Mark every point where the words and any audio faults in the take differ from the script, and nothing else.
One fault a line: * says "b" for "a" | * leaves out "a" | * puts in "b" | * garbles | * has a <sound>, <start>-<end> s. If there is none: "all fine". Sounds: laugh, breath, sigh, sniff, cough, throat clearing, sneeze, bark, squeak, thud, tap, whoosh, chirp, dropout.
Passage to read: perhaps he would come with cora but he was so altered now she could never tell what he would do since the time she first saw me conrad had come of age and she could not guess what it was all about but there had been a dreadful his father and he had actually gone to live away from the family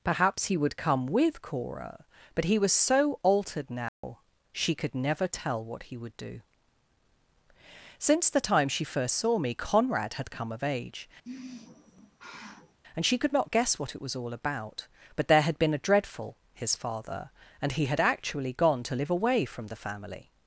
* has a dropout, 3.9-4.0 s
* has a sigh, 11.2-12.8 s